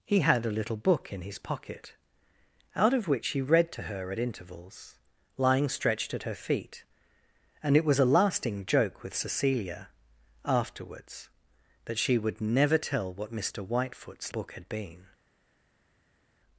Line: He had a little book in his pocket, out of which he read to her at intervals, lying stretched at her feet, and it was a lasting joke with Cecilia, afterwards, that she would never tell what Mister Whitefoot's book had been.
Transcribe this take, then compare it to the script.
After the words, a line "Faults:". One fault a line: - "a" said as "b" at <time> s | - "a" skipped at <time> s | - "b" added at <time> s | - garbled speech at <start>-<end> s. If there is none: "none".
He had a little book in his pocket, out of which he read to her at intervals, lying stretched at her feet, and it was a lasting joke with Cecilia, afterwards, that she would never tell what Mister Whitefoot's book had been.
Faults:
none